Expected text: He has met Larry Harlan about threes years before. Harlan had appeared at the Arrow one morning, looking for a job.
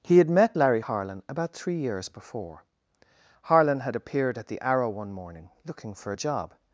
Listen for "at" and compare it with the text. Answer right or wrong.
right